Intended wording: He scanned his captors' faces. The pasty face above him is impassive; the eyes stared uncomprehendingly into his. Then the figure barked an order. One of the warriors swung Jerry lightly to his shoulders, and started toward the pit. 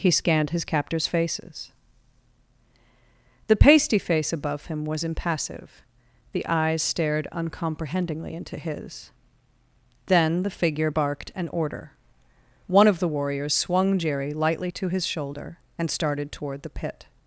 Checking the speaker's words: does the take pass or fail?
fail